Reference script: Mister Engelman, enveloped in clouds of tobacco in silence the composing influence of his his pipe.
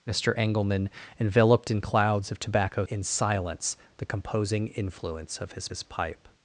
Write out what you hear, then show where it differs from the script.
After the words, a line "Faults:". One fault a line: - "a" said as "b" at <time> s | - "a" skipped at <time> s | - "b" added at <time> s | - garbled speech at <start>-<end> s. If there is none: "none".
Mister Engelman, enveloped in clouds of tobacco in silence the composing influence of his his pipe.
Faults:
none